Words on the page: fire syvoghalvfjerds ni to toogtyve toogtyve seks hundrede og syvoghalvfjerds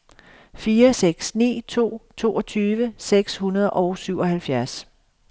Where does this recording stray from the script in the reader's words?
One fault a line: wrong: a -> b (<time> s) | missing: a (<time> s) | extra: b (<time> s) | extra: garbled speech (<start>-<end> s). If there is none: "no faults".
wrong: syvoghalvfjerds -> seks (0.9 s)
missing: toogtyve (2.9 s)